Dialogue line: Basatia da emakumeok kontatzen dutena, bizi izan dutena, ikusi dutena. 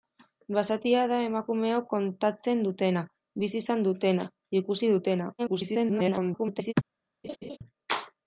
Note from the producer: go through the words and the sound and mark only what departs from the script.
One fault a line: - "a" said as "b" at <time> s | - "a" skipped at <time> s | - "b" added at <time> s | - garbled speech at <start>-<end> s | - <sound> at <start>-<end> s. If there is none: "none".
- garbled speech at 5.4-6.7 s
- laugh at 7.2-7.6 s